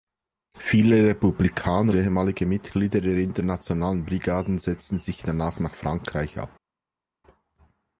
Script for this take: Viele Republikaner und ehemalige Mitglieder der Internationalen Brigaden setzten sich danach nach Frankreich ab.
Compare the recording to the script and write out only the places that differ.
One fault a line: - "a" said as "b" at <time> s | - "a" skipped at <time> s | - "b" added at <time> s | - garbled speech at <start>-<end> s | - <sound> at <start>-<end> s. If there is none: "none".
- "und" skipped at 1.9 s